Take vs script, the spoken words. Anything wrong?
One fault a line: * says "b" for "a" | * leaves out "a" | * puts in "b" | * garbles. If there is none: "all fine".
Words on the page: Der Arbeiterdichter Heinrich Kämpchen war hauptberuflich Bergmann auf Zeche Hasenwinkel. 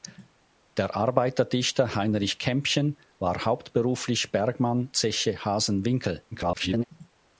* leaves out "auf"
* garbles